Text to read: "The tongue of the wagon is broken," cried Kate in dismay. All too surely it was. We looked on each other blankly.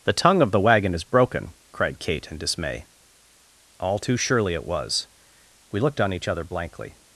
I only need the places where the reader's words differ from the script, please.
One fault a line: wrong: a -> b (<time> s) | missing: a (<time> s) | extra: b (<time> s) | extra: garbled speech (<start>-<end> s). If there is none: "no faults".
no faults